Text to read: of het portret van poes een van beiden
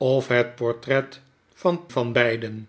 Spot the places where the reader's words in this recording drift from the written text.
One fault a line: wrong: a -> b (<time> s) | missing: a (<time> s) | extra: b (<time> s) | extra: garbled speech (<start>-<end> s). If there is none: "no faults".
missing: poes een (1.9 s)